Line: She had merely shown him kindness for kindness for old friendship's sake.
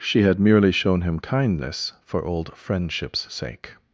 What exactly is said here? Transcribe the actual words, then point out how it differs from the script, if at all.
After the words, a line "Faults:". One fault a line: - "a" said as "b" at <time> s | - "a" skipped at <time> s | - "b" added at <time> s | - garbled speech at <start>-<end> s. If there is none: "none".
She had merely shown him kindness for old friendship's sake.
Faults:
- "kindness for" skipped at 2.2 s